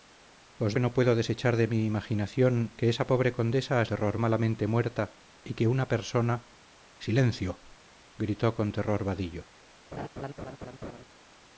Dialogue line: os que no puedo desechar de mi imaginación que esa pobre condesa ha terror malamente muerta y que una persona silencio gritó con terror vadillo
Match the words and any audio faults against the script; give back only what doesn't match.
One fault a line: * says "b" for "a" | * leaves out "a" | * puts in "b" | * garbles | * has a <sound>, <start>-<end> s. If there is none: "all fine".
* has a laugh, 9.9-11.0 s